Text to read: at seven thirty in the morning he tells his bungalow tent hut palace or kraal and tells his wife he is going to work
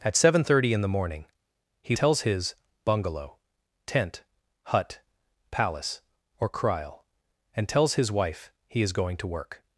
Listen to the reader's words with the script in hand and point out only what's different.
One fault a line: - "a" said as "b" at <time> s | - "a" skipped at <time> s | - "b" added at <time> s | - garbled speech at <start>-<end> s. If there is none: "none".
none